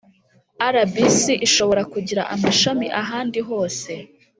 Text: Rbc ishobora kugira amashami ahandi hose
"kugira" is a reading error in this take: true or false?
false